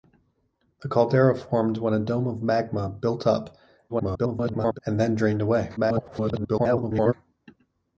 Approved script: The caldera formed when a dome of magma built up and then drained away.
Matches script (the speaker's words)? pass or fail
fail